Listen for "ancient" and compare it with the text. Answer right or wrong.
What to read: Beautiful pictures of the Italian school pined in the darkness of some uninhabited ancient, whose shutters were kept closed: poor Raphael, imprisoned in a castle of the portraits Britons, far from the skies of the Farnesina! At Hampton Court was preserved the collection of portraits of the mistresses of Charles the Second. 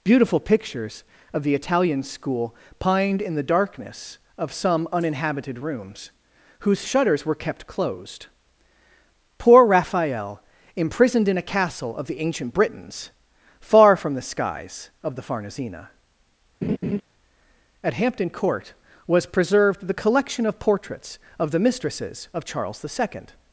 wrong